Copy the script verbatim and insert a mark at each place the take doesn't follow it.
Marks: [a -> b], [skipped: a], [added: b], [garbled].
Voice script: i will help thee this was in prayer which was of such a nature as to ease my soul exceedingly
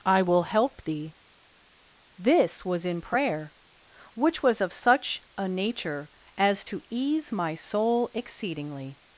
i will help thee this was in prayer which was of such a nature as to ease my soul exceedingly